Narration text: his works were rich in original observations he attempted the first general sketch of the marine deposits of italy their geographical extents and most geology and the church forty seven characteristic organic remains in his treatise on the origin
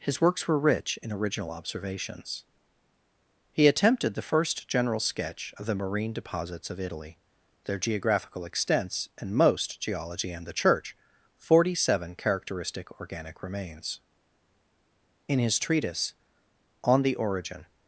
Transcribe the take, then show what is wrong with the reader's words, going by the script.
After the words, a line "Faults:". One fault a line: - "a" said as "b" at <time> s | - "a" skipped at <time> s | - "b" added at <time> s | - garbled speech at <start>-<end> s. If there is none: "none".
his works were rich in original observations he attempted the first general sketch of the marine deposits of italy their geographical extents and most geology and the church forty seven characteristic organic remains in his treatise on the origin
Faults:
none